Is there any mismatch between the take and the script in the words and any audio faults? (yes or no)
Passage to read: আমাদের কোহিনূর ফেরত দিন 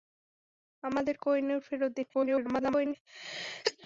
yes